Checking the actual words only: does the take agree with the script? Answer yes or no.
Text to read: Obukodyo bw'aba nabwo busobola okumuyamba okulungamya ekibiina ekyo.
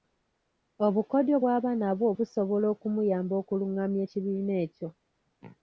yes